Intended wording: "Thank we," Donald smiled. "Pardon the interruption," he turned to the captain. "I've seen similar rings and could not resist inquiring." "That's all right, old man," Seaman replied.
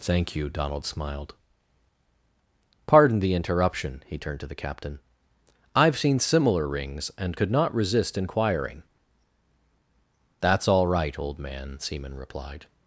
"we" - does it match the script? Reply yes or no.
no